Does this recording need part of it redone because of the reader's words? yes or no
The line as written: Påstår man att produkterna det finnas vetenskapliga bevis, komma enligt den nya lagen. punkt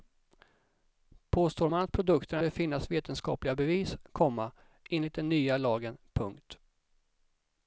no